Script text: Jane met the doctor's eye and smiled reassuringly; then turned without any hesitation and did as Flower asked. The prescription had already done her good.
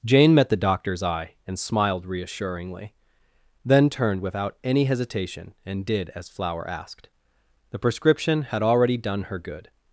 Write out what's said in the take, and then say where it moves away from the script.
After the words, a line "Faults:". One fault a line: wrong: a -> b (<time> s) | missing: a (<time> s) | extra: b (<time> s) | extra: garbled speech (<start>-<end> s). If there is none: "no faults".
Jane met the doctor's eye and smiled reassuringly; then turned without any hesitation and did as Flower asked. The prescription had already done her good.
Faults:
no faults